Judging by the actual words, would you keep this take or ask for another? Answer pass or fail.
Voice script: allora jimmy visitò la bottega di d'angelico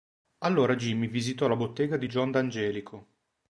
fail